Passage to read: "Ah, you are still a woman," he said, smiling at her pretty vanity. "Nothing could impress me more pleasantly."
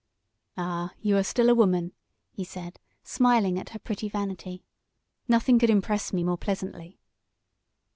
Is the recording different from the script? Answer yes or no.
no